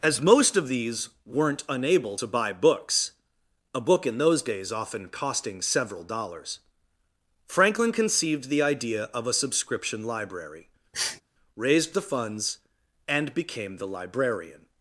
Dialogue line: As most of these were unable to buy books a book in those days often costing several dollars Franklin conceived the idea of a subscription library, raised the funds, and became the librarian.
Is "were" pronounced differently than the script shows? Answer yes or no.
yes